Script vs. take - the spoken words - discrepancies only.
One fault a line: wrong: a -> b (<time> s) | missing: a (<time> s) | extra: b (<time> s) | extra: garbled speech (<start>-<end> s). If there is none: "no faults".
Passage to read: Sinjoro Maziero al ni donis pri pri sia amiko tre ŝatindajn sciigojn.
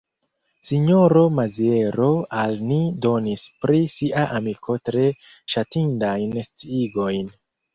missing: pri (3.8 s)